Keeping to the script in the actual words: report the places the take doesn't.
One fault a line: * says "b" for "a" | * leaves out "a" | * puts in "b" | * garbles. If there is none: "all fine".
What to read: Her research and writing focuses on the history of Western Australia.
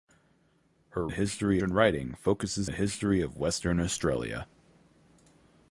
* says "history" for "research"
* leaves out "on"